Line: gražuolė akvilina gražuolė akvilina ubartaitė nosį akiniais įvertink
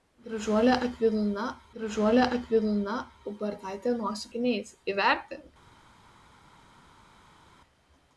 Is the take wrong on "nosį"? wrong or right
right